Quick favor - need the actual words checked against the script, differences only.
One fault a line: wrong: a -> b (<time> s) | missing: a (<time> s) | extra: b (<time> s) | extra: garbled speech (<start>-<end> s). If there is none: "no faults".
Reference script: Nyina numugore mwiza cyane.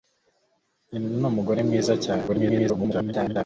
extra: garbled speech (2.3-3.4 s)